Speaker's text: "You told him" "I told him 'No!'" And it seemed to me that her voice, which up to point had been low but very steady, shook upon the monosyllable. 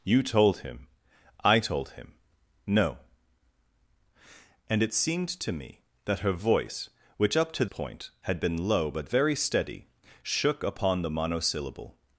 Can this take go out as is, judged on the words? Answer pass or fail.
pass